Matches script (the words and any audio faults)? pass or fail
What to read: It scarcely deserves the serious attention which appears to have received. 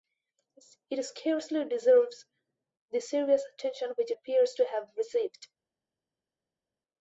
pass